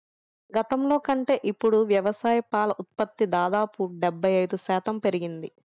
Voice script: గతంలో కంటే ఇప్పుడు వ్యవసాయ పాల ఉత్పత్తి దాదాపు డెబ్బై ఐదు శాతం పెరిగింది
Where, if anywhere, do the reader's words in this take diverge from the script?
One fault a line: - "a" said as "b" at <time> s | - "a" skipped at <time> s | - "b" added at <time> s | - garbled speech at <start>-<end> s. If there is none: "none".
none